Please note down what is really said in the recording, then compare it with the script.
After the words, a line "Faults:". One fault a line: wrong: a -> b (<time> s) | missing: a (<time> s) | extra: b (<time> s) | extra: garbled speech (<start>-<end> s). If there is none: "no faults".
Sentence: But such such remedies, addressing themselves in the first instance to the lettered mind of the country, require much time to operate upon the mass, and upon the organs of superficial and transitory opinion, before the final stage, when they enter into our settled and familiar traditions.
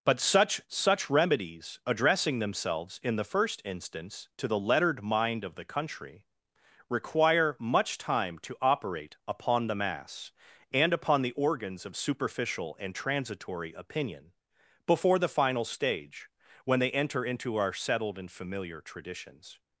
But such such remedies, addressing themselves in the first instance to the lettered mind of the country, require much time to operate upon the mass, and upon the organs of superficial and transitory opinion, before the final stage, when they enter into our settled and familiar traditions.
Faults:
no faults